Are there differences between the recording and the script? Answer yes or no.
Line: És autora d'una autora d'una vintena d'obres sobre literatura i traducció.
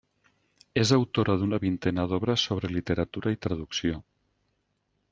yes